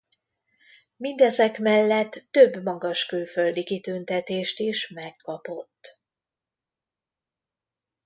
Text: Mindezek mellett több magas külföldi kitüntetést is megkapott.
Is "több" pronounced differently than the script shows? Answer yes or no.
no